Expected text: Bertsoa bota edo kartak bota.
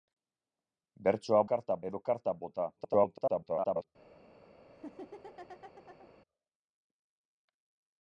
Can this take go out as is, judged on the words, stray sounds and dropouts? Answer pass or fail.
fail